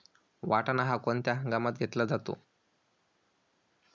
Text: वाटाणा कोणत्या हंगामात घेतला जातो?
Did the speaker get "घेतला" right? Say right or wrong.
right